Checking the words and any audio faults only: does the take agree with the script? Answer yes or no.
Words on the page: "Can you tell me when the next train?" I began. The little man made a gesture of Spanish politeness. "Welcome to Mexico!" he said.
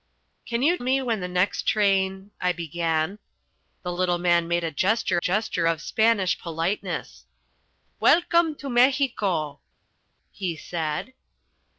no